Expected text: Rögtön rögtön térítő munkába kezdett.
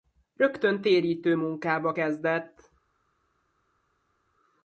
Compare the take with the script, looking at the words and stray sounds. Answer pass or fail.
fail